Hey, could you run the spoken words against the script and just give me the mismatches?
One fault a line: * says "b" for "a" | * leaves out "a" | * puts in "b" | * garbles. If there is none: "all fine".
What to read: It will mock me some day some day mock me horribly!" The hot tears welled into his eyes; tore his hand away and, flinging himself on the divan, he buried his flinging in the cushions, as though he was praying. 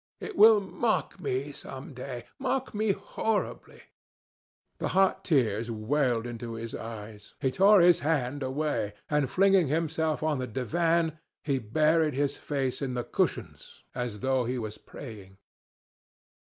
* leaves out "some day"
* puts in "he"
* says "face" for "flinging"